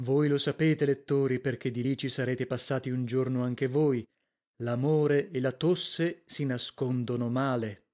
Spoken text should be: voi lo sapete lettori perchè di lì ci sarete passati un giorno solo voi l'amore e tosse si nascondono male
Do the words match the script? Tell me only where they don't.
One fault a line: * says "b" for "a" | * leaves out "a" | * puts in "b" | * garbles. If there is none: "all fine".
* says "anche" for "solo"
* puts in "la"